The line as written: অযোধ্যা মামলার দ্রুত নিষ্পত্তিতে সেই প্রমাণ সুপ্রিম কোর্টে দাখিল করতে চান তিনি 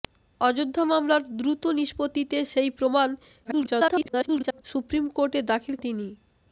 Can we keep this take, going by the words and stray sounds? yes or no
no